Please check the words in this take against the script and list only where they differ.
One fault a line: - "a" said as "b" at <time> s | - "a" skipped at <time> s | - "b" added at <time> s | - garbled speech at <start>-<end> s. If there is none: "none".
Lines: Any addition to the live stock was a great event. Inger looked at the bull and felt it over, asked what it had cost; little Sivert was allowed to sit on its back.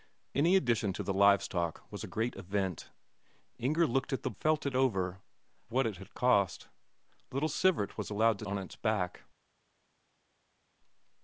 - "bull and" skipped at 4.3 s
- "asked" skipped at 5.2 s
- "sit" skipped at 8.4 s